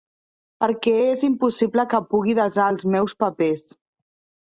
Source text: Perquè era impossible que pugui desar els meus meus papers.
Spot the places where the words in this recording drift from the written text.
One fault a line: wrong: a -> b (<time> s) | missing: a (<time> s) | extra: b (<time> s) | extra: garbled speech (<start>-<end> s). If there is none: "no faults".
wrong: era -> és (1.1 s)
missing: meus (3.2 s)